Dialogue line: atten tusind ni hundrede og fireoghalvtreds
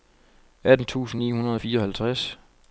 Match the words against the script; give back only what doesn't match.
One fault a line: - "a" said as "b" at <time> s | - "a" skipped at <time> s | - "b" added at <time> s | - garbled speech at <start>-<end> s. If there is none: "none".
none